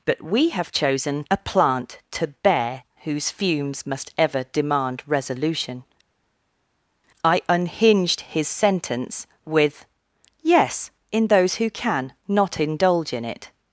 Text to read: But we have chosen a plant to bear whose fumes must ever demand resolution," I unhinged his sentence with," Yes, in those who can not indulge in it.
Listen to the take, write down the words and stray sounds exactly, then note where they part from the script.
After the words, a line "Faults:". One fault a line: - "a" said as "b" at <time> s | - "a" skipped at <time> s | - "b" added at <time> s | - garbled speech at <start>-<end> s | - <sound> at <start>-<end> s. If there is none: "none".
But we have chosen a plant to bear whose fumes must ever demand resolution," I unhinged his sentence with," Yes, in those who can not indulge in it.
Faults:
none